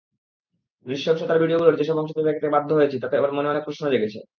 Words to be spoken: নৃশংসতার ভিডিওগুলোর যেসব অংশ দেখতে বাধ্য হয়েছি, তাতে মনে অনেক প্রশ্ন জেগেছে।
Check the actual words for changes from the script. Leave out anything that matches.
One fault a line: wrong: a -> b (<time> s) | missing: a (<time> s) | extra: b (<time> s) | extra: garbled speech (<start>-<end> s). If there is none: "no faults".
no faults